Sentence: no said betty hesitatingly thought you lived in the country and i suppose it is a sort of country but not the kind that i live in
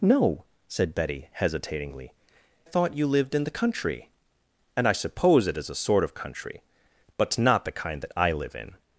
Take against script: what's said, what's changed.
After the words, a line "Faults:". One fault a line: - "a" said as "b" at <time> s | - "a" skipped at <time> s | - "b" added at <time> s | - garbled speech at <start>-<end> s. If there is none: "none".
no said betty hesitatingly thought you lived in the country and i suppose it is a sort of country but not the kind that i live in
Faults:
none